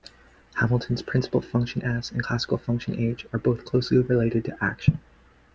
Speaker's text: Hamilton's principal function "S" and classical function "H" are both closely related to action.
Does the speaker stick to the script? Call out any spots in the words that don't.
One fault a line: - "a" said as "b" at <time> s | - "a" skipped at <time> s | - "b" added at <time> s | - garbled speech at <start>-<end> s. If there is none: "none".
none